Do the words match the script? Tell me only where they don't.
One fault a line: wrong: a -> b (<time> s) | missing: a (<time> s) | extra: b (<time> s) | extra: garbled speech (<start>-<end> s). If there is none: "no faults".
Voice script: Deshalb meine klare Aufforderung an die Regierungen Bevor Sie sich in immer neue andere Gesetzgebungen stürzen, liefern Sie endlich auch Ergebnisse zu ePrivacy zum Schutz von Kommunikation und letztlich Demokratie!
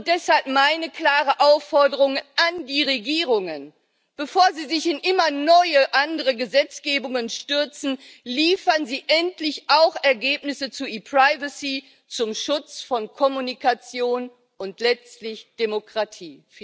no faults